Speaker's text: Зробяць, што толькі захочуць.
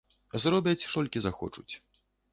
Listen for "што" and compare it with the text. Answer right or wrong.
wrong